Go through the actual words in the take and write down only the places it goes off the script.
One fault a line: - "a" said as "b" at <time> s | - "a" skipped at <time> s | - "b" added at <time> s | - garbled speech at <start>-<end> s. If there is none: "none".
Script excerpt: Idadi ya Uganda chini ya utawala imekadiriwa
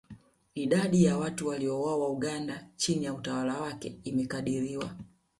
- "watu waliouawa" added at 1.2 s
- "wake" added at 3.6 s